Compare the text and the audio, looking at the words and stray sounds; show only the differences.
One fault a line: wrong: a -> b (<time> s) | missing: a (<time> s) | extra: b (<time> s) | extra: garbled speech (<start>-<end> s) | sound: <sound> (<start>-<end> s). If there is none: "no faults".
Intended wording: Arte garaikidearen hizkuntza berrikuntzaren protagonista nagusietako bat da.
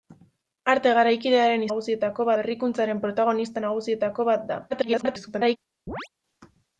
wrong: hizkuntza -> nagusietako (1.7 s)
extra: garbled speech (4.7-5.6 s)
sound: chirp (5.9-6.1 s)